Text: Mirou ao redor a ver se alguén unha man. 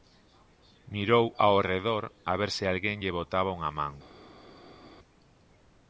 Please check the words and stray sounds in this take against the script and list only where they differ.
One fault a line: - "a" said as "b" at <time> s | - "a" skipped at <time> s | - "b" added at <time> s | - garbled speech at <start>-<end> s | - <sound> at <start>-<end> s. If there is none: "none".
- "lle botaba" added at 3.0 s